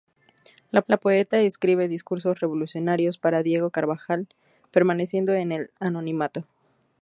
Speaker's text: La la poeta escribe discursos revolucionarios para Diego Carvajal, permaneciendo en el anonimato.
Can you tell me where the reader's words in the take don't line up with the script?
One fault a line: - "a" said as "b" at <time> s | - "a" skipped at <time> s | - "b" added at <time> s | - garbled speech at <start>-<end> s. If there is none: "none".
none